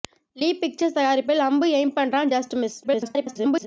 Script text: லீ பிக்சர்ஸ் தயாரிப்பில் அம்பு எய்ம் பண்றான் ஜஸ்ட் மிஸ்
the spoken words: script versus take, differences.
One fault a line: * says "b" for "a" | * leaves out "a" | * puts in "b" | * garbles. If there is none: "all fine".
* garbles